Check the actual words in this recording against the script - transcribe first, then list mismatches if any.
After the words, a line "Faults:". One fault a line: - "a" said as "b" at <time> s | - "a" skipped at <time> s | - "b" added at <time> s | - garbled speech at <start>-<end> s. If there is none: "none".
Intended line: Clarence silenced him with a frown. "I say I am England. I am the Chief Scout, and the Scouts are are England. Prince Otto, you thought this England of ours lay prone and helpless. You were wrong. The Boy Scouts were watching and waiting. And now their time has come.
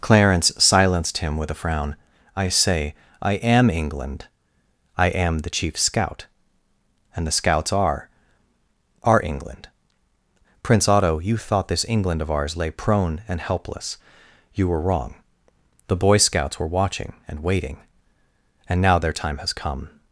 Clarence silenced him with a frown. "I say I am England. I am the Chief Scout, and the Scouts are are England. Prince Otto, you thought this England of ours lay prone and helpless. You were wrong. The Boy Scouts were watching and waiting. And now their time has come.
Faults:
none